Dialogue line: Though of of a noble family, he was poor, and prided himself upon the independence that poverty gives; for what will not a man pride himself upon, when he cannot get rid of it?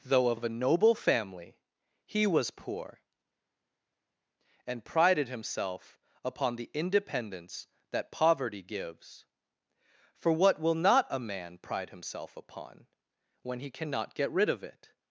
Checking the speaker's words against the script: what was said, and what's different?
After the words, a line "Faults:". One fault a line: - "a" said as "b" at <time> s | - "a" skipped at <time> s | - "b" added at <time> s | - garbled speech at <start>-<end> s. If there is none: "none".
Though of of a noble family, he was poor, and prided himself upon the independence that poverty gives; for what will not a man pride himself upon, when he cannot get rid of it?
Faults:
none